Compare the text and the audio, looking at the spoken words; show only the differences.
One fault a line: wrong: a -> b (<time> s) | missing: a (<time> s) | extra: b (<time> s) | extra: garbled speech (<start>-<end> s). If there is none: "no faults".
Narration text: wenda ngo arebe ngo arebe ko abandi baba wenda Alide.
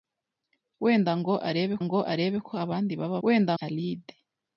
no faults